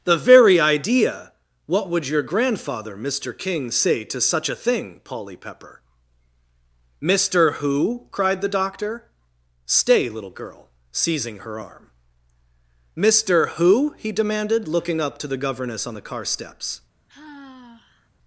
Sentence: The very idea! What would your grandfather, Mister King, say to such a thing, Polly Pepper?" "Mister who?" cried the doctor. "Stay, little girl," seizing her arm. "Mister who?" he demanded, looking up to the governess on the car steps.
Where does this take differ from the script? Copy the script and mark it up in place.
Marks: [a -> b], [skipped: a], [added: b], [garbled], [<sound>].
The very idea! What would your grandfather, Mister King, say to such a thing, Polly Pepper?" "Mister who?" cried the doctor. "Stay, little girl," seizing her arm. "Mister who?" he demanded, looking up to the governess on the car steps. [sigh]